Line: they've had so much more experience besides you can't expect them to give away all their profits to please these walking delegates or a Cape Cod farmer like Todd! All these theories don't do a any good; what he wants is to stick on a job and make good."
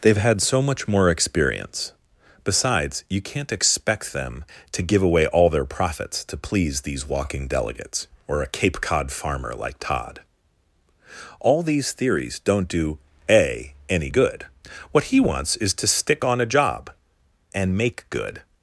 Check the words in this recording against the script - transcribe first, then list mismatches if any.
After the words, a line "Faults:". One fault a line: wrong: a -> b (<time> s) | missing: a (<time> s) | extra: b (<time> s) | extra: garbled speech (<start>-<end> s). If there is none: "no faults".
they've had so much more experience besides you can't expect them to give away all their profits to please these walking delegates or a Cape Cod farmer like Todd! All these theories don't do a any good; what he wants is to stick on a job and make good."
Faults:
no faults